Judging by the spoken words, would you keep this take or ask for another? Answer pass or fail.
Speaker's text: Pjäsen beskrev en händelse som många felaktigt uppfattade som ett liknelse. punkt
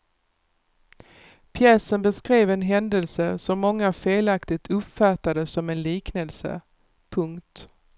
fail